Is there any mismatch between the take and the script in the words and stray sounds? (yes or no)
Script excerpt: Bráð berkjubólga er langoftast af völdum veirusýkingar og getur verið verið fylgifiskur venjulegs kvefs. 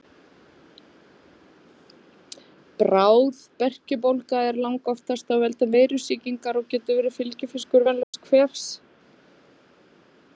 yes